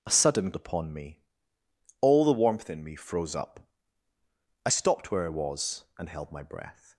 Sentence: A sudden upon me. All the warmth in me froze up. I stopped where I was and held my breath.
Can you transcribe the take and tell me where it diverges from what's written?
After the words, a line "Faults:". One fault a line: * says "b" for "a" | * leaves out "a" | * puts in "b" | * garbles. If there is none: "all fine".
A sudden upon me. All the warmth in me froze up. I stopped where I was and held my breath.
Faults:
all fine